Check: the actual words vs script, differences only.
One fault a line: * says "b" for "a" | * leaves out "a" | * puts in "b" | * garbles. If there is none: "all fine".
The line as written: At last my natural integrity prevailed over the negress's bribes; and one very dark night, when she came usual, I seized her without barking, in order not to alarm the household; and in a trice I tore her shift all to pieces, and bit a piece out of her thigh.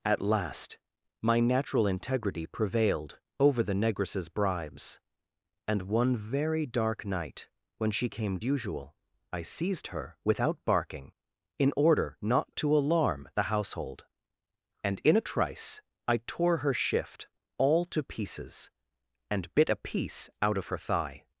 all fine